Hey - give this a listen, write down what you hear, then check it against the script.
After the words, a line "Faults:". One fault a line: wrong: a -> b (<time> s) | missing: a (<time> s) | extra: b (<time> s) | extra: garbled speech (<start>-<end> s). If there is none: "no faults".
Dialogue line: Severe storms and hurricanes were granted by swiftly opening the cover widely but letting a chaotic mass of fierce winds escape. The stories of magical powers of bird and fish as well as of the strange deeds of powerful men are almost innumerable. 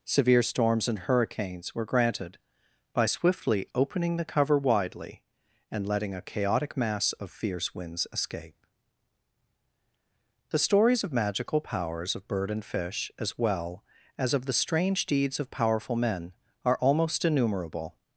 Severe storms and hurricanes were granted by swiftly opening the cover widely and letting a chaotic mass of fierce winds escape. The stories of magical powers of bird and fish as well as of the strange deeds of powerful men are almost innumerable.
Faults:
wrong: but -> and (5.7 s)